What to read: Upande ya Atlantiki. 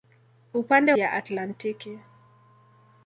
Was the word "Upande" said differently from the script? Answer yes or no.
no